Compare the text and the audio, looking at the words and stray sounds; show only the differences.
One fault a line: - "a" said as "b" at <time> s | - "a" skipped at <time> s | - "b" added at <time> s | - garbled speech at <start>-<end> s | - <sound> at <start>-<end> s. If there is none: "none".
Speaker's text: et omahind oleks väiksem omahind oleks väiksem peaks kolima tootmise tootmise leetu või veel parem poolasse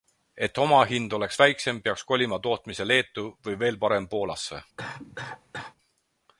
- "omahind oleks väiksem" skipped at 1.8 s
- "tootmise" skipped at 2.9 s
- cough at 4.8-5.8 s